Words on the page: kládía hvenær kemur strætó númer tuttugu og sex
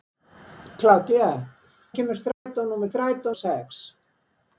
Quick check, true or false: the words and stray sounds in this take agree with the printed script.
false